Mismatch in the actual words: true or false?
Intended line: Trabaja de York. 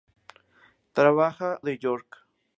false